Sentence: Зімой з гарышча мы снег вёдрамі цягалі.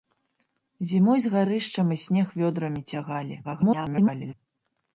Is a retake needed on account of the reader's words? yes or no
yes